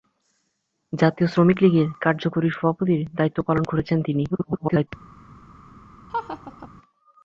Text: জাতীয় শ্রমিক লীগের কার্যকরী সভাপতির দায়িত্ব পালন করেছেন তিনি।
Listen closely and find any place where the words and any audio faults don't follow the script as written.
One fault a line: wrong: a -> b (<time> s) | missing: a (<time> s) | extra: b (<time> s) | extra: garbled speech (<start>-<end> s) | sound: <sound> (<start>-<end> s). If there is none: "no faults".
extra: garbled speech (4.3-4.9 s)
sound: laugh (6.1-6.7 s)